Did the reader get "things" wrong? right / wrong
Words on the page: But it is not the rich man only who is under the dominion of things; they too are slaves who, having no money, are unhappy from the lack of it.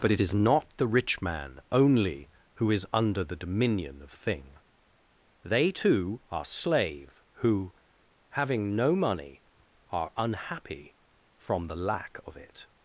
wrong